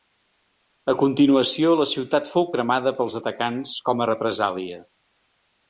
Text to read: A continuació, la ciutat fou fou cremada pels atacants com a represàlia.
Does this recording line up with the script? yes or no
no